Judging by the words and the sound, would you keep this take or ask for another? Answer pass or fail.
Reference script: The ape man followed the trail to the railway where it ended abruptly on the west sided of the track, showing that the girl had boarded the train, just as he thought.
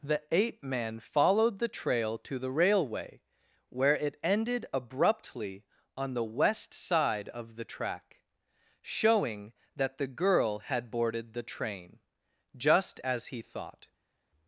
fail